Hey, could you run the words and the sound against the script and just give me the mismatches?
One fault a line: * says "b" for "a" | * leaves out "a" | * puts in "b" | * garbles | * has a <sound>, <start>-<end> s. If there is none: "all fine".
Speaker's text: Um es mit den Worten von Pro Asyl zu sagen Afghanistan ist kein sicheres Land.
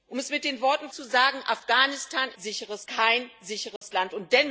* leaves out "von Pro Asyl"
* says "sicheres" for "ist"
* has a dropout, 3.8-3.8 s